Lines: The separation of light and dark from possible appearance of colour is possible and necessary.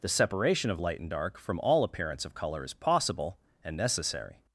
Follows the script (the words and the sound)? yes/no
no